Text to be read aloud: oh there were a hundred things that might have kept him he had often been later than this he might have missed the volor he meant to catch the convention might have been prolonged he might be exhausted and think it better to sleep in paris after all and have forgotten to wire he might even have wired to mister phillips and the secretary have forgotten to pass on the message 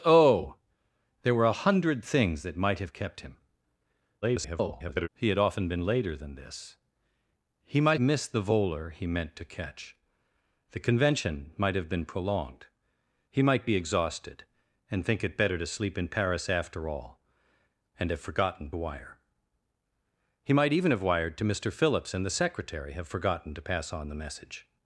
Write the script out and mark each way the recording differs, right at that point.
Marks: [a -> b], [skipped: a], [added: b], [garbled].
oh there were a hundred things that might have kept him [garbled] he had often been later than this he might [skipped: have] missed the volor he meant to catch the convention might have been prolonged he might be exhausted and think it better to sleep in paris after all and have forgotten [skipped: to] wire he might even have wired to mister phillips and the secretary have forgotten to pass on the message